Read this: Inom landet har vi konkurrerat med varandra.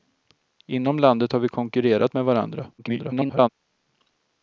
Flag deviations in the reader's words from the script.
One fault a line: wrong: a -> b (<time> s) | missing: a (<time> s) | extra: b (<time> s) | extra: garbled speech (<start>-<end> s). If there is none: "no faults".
extra: garbled speech (2.8-3.5 s)